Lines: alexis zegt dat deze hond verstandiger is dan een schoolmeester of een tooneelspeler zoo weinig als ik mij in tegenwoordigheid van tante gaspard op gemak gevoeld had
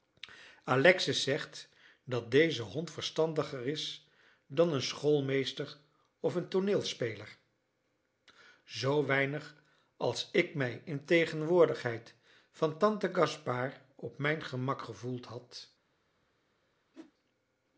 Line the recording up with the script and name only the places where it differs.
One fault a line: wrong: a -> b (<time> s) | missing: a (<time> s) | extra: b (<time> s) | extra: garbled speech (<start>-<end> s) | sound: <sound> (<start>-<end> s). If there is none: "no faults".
extra: mijn (14.2 s)
sound: whoosh (16.9-17.1 s)